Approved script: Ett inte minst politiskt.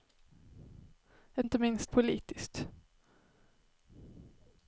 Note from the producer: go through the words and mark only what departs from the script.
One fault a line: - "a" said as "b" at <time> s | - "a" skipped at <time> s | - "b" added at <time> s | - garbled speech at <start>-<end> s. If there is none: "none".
none